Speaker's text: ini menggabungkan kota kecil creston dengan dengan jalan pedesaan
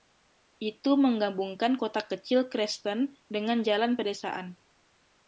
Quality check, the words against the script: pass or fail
fail